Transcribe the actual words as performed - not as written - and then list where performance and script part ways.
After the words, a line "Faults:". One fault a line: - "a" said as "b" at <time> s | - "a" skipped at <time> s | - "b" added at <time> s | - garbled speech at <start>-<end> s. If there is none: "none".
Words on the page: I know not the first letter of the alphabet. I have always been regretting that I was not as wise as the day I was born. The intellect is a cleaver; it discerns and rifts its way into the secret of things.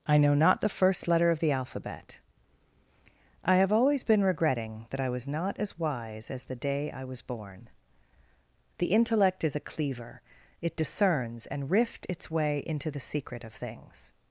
I know not the first letter of the alphabet. I have always been regretting that I was not as wise as the day I was born. The intellect is a cleaver; it discerns and rift its way into the secret of things.
Faults:
- "rifts" said as "rift" at 11.7 s